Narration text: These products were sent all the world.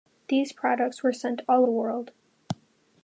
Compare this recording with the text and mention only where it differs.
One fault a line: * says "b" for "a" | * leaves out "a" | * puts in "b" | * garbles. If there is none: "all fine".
all fine